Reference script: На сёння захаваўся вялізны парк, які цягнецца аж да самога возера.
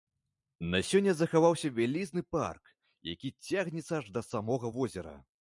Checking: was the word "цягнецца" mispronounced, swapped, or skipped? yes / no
no